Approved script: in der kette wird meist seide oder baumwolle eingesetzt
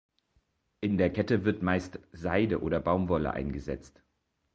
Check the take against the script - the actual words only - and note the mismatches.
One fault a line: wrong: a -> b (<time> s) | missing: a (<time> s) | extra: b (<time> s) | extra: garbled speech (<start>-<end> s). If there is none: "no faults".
no faults